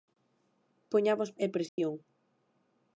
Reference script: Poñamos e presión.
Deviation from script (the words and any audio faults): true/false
true